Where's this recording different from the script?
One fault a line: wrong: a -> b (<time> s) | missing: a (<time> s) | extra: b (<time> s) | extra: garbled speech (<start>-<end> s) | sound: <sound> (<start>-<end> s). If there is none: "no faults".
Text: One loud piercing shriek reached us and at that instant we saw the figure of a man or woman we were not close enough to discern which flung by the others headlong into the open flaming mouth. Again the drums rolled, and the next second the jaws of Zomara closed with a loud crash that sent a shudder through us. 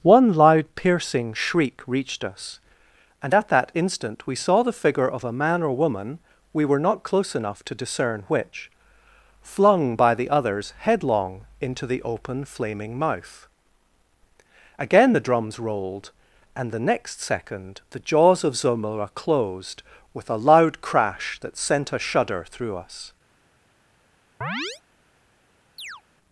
sound: chirp (24.4-24.8 s)
sound: chirp (25.8-26.0 s)